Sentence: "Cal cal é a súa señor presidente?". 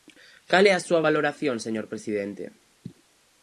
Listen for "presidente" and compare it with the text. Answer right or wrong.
right